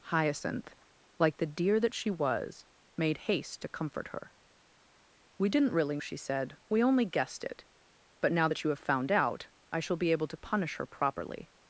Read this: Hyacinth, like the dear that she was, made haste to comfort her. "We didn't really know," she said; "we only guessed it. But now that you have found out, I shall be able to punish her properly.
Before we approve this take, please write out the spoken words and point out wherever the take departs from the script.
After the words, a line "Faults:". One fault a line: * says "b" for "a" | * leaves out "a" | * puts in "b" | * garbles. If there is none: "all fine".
Hyacinth, like the dear that she was, made haste to comfort her. "We didn't really," she said; "we only guessed it. But now that you have found out, I shall be able to punish her properly.
Faults:
* leaves out "know"